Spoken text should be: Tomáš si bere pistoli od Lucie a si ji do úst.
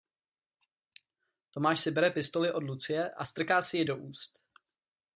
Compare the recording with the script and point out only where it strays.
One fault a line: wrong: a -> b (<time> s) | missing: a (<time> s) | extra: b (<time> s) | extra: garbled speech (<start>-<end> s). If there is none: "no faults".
extra: strká (3.2 s)